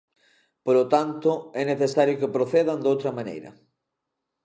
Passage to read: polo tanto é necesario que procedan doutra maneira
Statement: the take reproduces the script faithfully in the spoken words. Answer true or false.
true